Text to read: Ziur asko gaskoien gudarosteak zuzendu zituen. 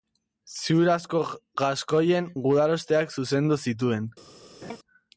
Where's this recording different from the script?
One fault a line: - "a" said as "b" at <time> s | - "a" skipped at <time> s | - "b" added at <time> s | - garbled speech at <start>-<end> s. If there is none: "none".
none